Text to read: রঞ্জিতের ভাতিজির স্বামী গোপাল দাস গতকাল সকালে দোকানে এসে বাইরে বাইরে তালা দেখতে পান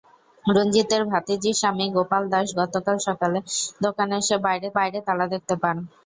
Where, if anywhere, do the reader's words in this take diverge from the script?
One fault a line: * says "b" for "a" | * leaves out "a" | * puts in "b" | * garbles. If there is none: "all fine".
all fine